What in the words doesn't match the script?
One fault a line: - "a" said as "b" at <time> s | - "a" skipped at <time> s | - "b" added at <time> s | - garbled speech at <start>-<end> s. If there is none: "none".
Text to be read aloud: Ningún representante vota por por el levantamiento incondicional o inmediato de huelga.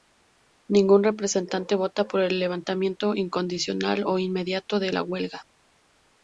- "por" skipped at 2.2 s
- "la" added at 4.9 s